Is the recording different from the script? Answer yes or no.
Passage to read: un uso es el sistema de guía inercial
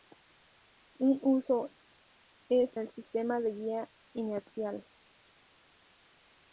no